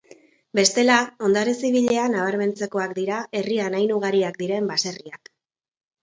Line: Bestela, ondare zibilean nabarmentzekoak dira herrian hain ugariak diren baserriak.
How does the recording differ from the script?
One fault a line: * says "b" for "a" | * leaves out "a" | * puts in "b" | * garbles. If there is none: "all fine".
all fine